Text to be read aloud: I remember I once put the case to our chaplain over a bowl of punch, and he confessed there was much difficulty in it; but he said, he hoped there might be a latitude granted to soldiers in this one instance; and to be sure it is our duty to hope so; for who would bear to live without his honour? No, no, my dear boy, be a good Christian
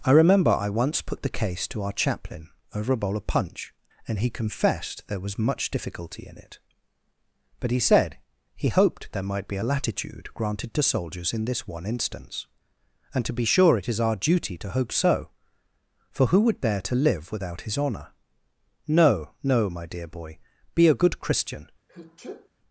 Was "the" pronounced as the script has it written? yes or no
yes